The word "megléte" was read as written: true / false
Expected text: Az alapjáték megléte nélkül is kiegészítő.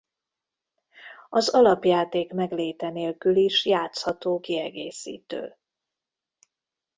true